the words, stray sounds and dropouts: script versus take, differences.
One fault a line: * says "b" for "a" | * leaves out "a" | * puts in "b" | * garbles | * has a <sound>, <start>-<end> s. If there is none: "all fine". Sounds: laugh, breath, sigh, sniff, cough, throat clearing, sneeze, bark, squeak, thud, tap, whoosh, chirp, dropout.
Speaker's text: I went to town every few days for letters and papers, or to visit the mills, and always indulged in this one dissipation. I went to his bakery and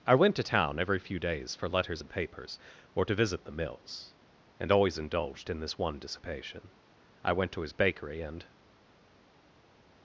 all fine